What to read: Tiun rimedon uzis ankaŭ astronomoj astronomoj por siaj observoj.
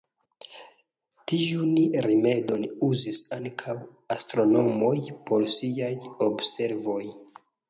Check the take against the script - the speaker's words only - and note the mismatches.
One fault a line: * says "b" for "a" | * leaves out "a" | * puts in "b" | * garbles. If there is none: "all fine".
* leaves out "astronomoj"